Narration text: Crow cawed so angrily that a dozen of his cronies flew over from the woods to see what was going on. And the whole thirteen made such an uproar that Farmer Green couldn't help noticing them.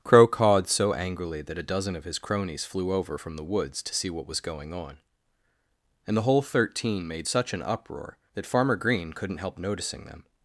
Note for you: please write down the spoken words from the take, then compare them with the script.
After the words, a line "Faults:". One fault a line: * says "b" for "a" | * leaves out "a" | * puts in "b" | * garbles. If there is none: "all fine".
Crow cawed so angrily that a dozen of his cronies flew over from the woods to see what was going on. And the whole thirteen made such an uproar that Farmer Green couldn't help noticing them.
Faults:
all fine